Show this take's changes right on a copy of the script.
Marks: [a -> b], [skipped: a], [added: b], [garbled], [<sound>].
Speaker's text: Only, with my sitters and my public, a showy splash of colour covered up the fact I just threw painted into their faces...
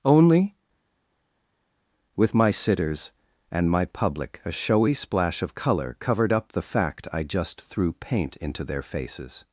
Only, with my sitters and my public, a showy splash of colour covered up the fact I just threw [painted -> paint] into their faces...